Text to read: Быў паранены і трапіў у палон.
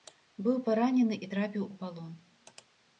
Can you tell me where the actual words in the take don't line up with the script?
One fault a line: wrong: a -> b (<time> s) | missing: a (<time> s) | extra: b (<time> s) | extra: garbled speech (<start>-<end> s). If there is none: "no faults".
no faults